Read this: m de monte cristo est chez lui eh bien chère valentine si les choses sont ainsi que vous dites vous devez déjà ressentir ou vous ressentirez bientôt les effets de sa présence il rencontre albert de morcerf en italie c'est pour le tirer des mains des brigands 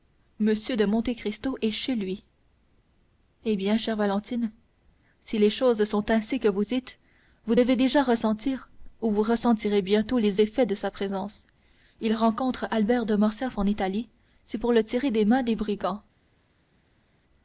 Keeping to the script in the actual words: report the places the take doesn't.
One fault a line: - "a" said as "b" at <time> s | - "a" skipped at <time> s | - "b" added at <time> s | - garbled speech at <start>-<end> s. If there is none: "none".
none